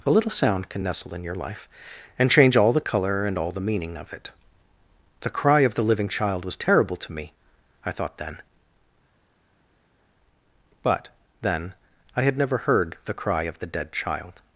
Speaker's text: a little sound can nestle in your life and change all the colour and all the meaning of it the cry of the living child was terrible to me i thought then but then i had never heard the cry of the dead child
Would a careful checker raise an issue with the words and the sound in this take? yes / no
no